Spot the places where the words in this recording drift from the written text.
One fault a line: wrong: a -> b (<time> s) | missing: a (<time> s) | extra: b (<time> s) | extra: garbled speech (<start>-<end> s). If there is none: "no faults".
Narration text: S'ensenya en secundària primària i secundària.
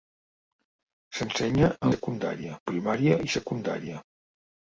no faults